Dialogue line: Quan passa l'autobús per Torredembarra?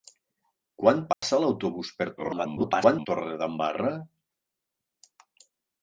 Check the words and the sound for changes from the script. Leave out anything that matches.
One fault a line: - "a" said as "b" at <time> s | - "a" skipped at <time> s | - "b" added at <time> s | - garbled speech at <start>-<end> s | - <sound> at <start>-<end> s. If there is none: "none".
- dropout at 1.1-1.2 s
- garbled speech at 2.2-3.1 s